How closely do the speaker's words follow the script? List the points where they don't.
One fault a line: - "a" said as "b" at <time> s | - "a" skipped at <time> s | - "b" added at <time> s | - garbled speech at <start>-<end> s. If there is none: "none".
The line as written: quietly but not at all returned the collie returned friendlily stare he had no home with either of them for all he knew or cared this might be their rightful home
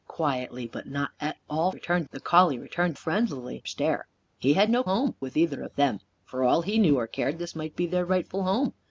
none